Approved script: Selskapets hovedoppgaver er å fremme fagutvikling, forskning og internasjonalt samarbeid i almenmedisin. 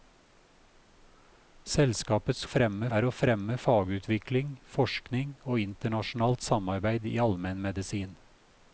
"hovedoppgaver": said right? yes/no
no